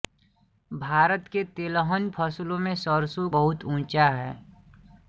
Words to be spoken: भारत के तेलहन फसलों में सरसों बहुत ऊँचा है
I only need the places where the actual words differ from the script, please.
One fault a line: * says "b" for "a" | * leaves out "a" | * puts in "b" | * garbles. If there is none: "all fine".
all fine